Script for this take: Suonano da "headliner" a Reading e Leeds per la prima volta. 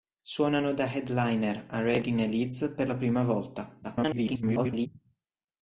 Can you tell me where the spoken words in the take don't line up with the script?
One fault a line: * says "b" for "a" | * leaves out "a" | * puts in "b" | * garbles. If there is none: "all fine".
* garbles